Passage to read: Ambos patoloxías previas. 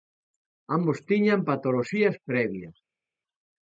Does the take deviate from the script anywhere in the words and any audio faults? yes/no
yes